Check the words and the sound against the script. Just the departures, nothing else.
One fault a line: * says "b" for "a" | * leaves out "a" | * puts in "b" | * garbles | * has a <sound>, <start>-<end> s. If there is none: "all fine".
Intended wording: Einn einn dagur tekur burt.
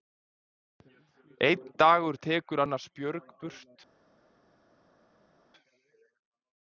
* leaves out "einn"
* puts in "annars björg"